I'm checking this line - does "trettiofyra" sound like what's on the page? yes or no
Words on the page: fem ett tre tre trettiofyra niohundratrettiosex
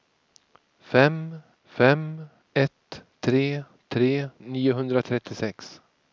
no